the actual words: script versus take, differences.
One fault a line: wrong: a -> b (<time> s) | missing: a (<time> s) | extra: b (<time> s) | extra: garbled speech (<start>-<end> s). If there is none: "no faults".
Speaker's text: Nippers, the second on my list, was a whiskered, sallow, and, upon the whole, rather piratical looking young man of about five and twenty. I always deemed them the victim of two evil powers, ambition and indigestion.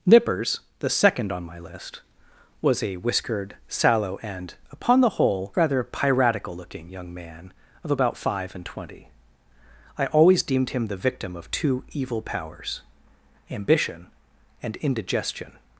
wrong: them -> him (10.7 s)